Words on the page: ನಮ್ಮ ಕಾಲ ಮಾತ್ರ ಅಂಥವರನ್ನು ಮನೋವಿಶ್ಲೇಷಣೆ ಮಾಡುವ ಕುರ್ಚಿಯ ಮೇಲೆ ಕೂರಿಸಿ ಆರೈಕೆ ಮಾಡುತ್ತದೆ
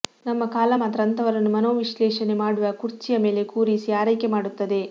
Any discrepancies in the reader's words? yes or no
no